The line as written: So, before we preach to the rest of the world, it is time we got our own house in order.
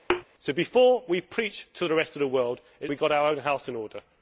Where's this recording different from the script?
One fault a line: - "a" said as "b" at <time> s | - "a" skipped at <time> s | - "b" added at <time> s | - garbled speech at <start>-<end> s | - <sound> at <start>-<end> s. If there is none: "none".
- thud at 0.1-0.2 s
- "is time" skipped at 2.9 s